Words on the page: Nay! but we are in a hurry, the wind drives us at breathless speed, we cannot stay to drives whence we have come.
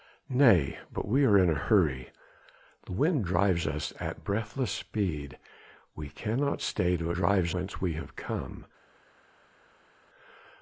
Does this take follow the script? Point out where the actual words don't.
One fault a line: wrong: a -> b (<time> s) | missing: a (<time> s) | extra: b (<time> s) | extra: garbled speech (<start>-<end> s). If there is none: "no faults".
no faults